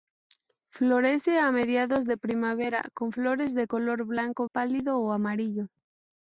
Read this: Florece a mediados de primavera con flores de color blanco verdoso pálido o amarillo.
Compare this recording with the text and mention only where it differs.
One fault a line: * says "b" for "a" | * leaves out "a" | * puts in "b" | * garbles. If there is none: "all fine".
* leaves out "verdoso"